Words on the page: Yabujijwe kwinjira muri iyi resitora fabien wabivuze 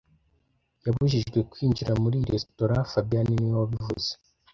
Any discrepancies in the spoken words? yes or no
yes